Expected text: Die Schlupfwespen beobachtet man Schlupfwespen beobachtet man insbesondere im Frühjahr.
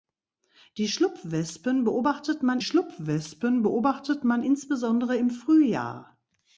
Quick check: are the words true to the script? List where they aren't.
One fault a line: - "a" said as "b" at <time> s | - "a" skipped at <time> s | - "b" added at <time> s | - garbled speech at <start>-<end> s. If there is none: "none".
none